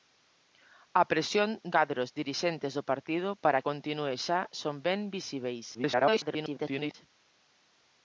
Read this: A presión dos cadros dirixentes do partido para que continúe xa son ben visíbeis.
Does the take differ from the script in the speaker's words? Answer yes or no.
yes